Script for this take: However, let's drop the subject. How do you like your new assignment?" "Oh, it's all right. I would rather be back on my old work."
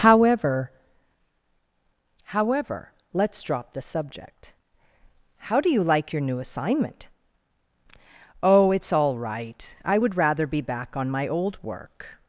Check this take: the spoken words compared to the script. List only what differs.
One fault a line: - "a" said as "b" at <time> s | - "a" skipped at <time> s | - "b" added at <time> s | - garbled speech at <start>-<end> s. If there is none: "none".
- "however" added at 2.2 s